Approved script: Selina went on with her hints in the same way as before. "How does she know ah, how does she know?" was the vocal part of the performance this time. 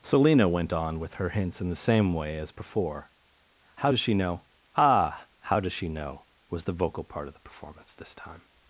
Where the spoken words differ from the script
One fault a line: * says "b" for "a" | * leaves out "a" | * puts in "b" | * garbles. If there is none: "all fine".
all fine